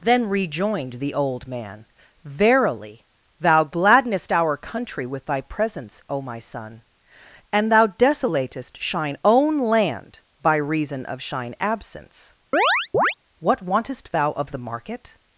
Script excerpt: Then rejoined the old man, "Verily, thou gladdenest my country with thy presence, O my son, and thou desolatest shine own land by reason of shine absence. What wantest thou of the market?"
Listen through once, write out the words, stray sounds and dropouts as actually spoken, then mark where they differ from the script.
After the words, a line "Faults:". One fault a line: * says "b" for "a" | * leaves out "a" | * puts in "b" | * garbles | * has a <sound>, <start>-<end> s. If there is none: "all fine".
Then rejoined the old man, "Verily, thou gladdenest our country with thy presence, O my son, and thou desolatest shine own land by reason of shine absence. What wantest thou of the market?"
Faults:
* says "our" for "my"
* has a chirp, 12.5-13.1 s